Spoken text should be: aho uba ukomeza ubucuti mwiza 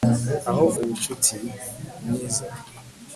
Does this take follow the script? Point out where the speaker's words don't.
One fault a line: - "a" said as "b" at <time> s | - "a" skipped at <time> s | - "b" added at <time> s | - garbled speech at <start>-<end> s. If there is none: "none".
- "uba ukomeza" skipped at 0.7 s